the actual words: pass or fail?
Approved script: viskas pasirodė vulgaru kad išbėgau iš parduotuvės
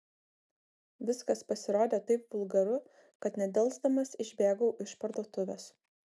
fail